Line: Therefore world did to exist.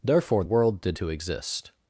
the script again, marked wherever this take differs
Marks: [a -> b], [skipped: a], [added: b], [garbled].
Therefore world did to exist.